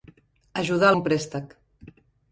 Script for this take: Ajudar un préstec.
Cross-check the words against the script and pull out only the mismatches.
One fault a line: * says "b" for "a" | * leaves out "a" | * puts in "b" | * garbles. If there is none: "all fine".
all fine